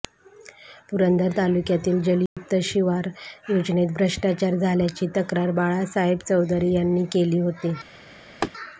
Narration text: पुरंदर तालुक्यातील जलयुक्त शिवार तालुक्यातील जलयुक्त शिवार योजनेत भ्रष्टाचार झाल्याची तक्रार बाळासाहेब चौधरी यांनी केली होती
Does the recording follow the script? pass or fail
fail